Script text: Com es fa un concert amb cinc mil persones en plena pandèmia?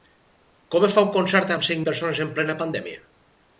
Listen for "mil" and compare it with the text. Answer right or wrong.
wrong